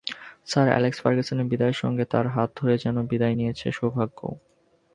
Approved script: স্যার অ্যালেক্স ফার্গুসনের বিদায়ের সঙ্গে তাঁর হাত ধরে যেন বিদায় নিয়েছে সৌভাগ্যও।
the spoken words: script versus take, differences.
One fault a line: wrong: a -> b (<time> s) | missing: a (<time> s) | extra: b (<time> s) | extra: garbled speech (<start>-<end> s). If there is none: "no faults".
no faults